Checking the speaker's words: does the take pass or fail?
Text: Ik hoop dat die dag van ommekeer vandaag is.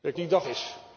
fail